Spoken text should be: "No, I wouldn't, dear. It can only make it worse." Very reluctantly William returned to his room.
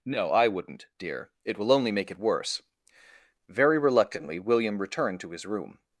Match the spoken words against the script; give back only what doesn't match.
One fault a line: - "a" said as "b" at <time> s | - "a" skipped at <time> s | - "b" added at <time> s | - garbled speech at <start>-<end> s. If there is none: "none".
- "can" said as "will" at 1.6 s